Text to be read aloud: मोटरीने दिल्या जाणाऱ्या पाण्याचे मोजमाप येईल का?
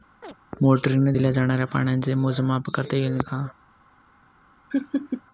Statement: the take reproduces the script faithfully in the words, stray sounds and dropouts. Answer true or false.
false